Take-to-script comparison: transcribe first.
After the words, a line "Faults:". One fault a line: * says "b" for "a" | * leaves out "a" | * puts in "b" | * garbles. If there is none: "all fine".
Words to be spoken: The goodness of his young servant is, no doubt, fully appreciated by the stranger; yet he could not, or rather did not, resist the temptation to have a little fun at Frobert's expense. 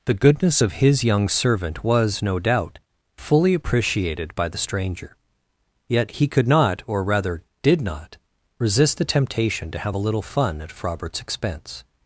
The goodness of his young servant was, no doubt, fully appreciated by the stranger; yet he could not, or rather did not, resist the temptation to have a little fun at Frobert's expense.
Faults:
* says "was" for "is"